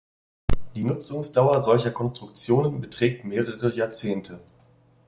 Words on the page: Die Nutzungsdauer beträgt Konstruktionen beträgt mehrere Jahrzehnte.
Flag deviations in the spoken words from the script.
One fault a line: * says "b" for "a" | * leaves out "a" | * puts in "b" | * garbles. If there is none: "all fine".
* says "solcher" for "beträgt"